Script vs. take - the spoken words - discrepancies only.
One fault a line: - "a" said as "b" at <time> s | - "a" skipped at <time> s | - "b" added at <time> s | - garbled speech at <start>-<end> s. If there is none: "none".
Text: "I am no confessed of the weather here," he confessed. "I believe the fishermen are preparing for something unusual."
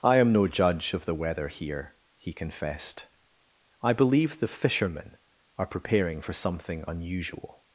- "confessed" said as "judge" at 0.5 s